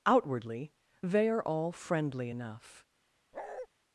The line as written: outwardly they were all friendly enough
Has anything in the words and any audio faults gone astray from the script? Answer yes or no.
yes